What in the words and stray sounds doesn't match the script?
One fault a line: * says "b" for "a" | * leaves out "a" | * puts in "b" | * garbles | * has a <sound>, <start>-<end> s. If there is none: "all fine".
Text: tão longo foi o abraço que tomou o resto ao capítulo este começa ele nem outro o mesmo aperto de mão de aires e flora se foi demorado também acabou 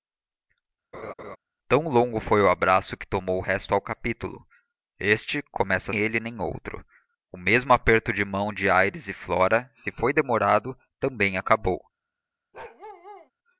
* has a laugh, 0.9-1.4 s
* has a bark, 12.5-13.3 s